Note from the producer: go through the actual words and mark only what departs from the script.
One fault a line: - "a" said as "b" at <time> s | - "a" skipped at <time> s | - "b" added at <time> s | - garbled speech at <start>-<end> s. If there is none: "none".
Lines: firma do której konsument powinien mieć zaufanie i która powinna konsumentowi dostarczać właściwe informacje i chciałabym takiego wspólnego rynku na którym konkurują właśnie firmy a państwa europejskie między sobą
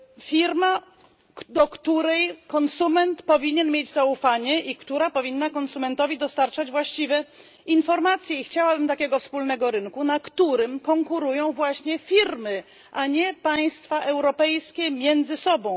- "nie" added at 13.1 s